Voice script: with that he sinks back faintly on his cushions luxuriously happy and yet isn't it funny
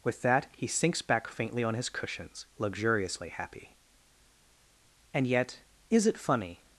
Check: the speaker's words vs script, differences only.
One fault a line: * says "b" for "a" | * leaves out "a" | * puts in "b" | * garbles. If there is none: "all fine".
* says "is" for "isn't"